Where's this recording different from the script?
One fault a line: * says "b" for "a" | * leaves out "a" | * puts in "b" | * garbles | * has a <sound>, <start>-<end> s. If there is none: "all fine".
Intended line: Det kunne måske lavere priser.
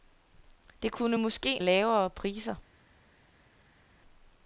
all fine